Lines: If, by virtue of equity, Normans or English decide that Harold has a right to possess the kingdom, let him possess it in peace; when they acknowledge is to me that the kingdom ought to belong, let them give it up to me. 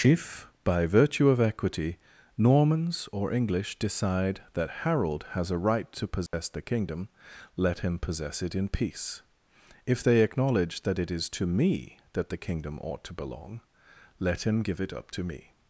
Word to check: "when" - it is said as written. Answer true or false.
false